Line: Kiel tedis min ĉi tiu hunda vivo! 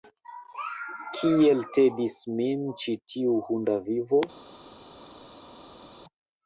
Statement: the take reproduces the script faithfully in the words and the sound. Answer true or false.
true